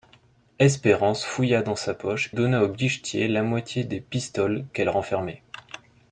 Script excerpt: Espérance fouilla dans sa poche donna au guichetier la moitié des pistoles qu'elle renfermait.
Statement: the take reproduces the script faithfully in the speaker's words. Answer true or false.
true